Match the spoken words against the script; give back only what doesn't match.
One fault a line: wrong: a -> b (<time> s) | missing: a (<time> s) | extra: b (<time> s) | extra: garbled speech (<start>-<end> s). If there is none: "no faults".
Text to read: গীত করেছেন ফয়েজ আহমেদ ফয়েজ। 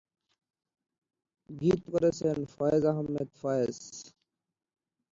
no faults